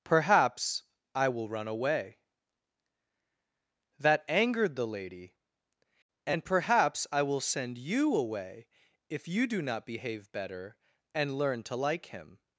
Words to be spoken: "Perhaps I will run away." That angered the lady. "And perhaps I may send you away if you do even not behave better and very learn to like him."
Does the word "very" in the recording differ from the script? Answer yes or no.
yes